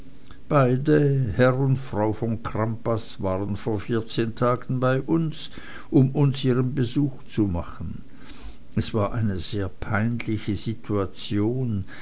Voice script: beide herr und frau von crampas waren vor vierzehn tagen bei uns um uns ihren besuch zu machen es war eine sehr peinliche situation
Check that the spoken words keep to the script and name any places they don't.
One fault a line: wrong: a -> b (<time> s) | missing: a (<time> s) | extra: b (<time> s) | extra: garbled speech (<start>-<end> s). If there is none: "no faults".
no faults